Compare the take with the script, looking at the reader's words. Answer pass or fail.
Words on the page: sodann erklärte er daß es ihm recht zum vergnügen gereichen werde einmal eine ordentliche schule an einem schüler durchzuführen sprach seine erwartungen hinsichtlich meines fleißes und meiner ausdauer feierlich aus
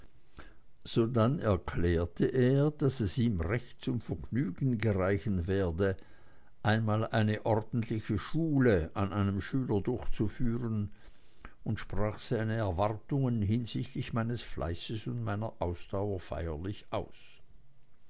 fail